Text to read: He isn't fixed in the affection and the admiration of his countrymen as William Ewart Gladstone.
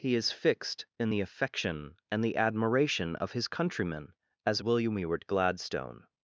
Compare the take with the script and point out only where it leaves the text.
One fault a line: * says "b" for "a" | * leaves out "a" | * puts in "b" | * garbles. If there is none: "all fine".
* says "is" for "isn't"